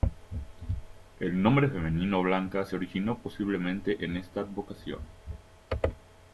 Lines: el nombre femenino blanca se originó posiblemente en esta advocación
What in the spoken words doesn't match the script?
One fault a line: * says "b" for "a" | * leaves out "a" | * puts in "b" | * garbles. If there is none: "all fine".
all fine